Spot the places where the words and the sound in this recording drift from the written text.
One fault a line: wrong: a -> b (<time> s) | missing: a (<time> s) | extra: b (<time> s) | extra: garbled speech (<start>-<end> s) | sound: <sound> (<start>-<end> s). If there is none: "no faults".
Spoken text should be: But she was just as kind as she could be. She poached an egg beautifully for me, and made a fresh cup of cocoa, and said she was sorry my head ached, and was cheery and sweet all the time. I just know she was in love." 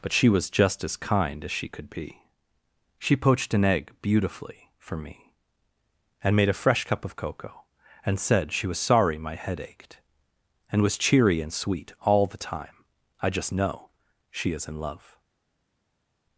wrong: was -> is (14.5 s)